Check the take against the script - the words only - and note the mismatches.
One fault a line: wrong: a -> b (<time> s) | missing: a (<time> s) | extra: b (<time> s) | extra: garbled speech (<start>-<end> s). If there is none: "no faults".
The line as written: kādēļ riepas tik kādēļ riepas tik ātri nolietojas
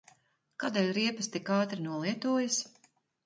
missing: kādēļ riepas tik (1.5 s)